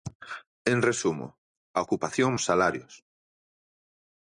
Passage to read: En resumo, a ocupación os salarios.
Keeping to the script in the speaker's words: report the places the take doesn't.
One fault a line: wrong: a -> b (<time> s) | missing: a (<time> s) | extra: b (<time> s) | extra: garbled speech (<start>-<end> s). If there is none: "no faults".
no faults